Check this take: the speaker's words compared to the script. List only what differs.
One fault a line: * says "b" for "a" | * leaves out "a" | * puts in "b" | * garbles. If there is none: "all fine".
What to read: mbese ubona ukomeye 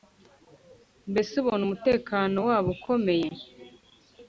* puts in "umutekano wabo"